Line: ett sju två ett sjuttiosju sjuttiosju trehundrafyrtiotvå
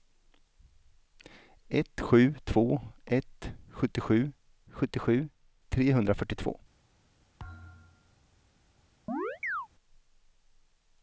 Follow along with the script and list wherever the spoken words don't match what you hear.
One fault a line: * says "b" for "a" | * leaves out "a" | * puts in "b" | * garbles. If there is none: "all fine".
all fine